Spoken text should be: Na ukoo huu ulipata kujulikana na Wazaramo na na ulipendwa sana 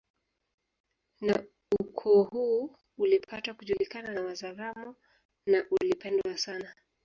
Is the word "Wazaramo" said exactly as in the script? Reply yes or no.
yes